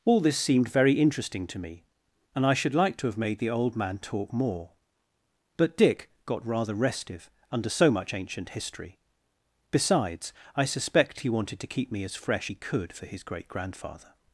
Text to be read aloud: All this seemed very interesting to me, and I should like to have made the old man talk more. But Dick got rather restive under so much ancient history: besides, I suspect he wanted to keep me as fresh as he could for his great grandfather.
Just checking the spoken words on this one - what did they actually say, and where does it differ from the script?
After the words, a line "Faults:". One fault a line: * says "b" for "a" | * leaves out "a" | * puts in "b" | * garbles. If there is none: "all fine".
All this seemed very interesting to me, and I should like to have made the old man talk more. But Dick got rather restive under so much ancient history: besides, I suspect he wanted to keep me as fresh he could for his great grandfather.
Faults:
* leaves out "as"